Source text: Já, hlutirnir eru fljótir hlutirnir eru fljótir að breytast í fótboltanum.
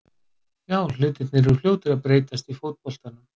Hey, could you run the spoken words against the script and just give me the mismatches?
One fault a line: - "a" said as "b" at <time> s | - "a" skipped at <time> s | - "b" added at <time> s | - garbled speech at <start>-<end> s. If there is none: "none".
- "hlutirnir eru fljótir" skipped at 1.9 s